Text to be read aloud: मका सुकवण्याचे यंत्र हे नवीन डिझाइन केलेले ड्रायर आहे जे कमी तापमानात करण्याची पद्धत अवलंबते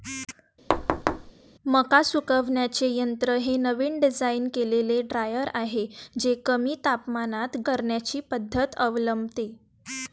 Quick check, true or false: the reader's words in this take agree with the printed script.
true